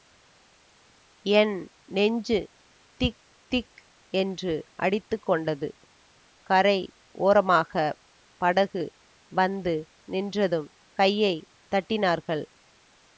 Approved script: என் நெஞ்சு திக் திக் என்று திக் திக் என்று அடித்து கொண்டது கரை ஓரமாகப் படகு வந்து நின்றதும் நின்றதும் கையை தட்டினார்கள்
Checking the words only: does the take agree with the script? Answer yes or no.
no